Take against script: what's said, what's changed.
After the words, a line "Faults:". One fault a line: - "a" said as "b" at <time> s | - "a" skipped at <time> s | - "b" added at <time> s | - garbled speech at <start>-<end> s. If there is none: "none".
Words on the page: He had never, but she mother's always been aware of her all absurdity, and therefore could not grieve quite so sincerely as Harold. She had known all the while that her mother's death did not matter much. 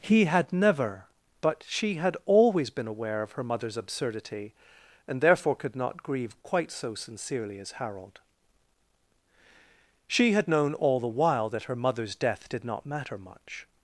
He had never, but she had always been aware of her mother's absurdity, and therefore could not grieve quite so sincerely as Harold. She had known all the while that her mother's death did not matter much.
Faults:
- "mother's" said as "had" at 1.9 s
- "all" said as "mother's" at 3.4 s